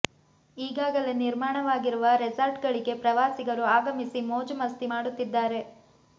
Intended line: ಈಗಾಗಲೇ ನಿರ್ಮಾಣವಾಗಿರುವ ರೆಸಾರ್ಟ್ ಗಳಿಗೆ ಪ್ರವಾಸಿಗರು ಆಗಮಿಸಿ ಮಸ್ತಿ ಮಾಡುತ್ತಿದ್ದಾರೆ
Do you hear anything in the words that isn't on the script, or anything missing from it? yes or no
yes